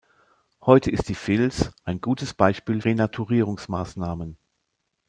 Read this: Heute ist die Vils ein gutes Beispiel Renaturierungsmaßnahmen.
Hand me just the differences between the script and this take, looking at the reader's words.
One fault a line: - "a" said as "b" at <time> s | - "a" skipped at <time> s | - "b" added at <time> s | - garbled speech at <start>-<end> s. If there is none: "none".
none